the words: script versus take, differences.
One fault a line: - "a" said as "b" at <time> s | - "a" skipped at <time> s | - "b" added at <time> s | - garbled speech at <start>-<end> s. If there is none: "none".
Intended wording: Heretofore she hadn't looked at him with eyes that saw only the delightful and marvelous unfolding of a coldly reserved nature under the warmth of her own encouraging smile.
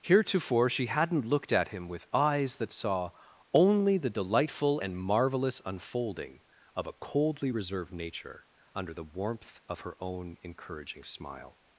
none